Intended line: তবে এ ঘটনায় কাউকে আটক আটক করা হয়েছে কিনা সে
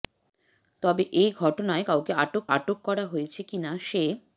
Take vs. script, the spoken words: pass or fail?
pass